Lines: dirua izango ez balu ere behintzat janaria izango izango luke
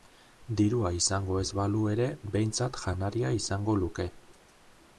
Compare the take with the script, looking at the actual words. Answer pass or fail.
fail